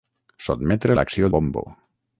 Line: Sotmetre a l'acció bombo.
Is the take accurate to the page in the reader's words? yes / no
yes